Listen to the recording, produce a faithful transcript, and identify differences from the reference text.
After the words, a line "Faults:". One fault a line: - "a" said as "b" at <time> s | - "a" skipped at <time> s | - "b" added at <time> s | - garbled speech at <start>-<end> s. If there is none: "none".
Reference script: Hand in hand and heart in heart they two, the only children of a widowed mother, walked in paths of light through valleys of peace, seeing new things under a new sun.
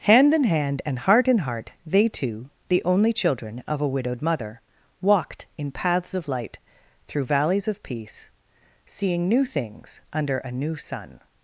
Hand in hand and heart in heart they two, the only children of a widowed mother, walked in paths of light through valleys of peace, seeing new things under a new sun.
Faults:
none